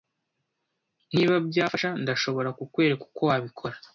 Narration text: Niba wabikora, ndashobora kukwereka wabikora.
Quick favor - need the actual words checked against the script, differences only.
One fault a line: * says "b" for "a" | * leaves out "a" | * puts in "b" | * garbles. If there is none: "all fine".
* says "byafasha" for "wabikora"
* puts in "uko"